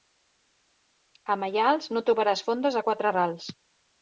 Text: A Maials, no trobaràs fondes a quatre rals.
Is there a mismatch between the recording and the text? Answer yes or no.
no